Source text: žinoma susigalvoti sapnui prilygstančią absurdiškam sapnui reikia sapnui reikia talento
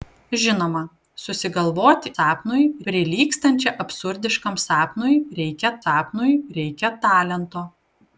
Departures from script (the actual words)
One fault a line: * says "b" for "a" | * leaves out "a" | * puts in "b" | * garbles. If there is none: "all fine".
all fine